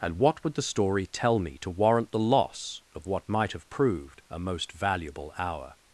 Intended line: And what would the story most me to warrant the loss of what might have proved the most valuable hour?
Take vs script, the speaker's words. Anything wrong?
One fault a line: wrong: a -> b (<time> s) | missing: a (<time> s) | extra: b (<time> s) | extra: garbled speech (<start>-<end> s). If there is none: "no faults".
wrong: most -> tell (1.1 s)
wrong: the -> a (4.3 s)